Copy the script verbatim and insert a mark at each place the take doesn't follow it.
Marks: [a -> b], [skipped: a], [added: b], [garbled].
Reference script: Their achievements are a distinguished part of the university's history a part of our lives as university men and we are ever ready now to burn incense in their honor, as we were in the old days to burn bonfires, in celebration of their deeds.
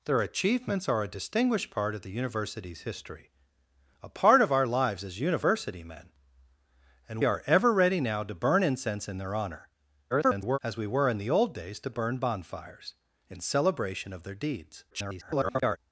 Their achievements are a distinguished part of the university's history a part of our lives as university men and [skipped: we] are ever ready now to burn incense in their honor, [garbled] as we were in the old days to burn bonfires, in celebration of their deeds. [garbled]